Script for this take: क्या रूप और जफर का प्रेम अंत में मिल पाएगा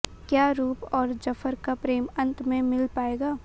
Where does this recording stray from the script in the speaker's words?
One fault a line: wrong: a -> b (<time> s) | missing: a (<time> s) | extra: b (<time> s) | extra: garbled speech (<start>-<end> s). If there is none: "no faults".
no faults